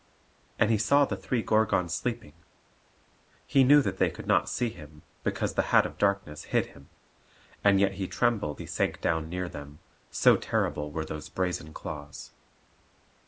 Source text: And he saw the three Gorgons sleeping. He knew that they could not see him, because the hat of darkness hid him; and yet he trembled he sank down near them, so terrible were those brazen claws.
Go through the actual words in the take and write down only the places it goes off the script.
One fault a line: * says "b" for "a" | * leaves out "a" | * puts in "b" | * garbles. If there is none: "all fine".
all fine